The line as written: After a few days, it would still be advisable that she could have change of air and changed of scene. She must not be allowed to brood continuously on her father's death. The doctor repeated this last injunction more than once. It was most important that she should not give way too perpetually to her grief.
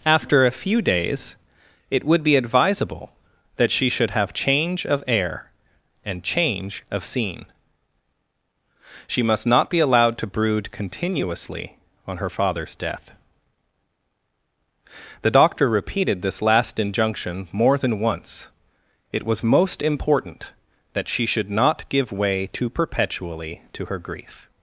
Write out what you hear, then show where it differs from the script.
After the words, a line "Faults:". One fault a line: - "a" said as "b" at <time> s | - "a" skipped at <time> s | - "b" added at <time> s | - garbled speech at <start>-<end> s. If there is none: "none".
After a few days, it would be advisable that she should have change of air and change of scene. She must not be allowed to brood continuously on her father's death. The doctor repeated this last injunction more than once. It was most important that she should not give way too perpetually to her grief.
Faults:
- "still" skipped at 2.2 s
- "could" said as "should" at 3.9 s
- "changed" said as "change" at 6.2 s